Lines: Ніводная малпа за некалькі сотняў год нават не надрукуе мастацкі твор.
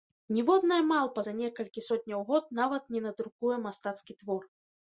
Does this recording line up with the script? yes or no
yes